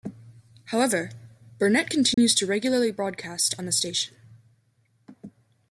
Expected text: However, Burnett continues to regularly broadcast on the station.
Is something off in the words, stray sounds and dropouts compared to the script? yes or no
yes